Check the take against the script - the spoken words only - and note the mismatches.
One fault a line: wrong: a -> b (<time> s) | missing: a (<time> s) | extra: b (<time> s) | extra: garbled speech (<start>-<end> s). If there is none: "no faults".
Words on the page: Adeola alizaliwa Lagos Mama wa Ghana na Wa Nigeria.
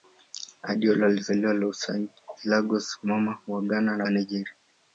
no faults